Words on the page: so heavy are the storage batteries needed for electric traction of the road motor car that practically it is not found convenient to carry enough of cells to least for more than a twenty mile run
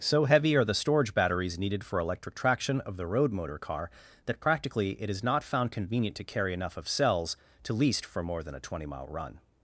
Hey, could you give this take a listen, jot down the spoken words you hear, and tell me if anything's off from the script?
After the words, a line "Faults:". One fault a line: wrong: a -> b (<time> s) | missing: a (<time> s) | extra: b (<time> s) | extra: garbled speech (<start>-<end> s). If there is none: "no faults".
so heavy are the storage batteries needed for electric traction of the road motor car that practically it is not found convenient to carry enough of cells to least for more than a twenty mile run
Faults:
no faults